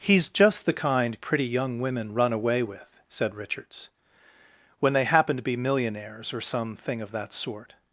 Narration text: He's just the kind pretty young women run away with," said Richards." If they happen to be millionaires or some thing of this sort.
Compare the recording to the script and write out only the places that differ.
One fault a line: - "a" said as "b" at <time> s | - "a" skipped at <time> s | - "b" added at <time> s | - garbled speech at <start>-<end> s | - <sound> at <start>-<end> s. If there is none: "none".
- "If" said as "When" at 4.8 s
- "this" said as "that" at 7.1 s